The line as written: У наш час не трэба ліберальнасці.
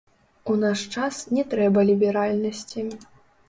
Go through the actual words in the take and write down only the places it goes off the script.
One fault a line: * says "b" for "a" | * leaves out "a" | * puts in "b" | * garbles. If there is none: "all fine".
all fine